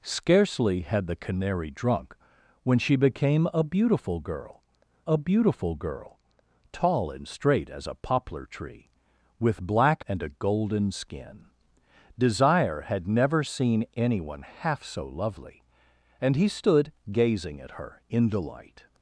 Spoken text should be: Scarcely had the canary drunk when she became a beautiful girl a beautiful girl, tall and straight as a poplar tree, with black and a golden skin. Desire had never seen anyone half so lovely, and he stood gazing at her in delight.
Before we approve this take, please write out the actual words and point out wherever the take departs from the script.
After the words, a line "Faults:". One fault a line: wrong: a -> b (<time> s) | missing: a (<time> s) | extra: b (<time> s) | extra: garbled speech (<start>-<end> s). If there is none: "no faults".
Scarcely had the canary drunk when she became a beautiful girl a beautiful girl, tall and straight as a poplar tree, with black and a golden skin. Desire had never seen anyone half so lovely, and he stood gazing at her in delight.
Faults:
no faults